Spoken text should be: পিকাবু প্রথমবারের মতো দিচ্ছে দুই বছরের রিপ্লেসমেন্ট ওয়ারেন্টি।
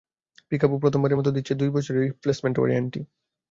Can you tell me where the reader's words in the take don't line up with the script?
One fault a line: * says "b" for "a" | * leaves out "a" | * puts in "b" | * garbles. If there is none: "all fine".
all fine